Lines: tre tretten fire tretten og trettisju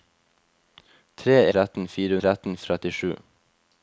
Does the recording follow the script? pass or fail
pass